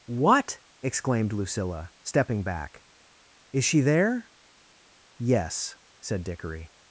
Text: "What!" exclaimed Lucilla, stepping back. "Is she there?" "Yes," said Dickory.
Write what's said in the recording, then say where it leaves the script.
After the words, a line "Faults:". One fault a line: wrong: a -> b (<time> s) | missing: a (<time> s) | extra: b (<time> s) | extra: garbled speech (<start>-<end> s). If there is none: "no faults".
"What!" exclaimed Lucilla, stepping back. "Is she there?" "Yes," said Dickory.
Faults:
no faults